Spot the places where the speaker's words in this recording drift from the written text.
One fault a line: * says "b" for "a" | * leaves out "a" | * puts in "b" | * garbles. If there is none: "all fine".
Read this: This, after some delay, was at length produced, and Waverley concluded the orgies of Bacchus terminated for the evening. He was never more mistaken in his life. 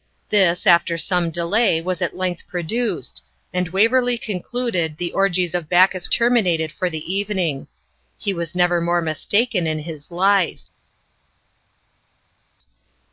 all fine